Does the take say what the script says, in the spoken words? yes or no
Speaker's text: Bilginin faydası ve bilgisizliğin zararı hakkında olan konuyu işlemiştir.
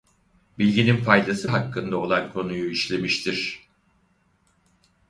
no